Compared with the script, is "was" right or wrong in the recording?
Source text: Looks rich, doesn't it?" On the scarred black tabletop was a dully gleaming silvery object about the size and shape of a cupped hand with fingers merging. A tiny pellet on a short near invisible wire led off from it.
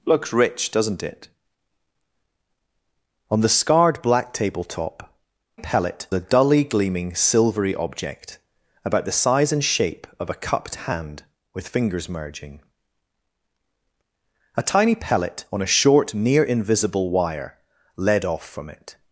wrong